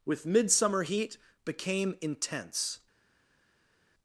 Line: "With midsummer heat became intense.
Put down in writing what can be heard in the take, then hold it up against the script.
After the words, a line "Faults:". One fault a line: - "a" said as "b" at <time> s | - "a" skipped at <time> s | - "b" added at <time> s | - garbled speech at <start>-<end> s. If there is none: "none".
"With midsummer heat became intense.
Faults:
none